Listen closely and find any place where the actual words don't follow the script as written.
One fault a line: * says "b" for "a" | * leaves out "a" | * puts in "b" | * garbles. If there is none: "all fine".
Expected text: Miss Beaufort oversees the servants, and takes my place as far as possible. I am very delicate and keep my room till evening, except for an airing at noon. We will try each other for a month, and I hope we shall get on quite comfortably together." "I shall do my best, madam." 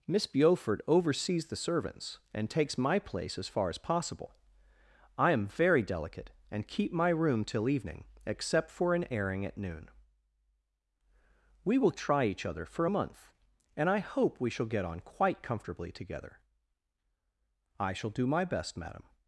all fine